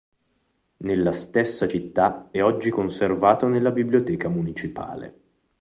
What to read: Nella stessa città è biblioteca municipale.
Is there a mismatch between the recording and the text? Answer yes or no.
yes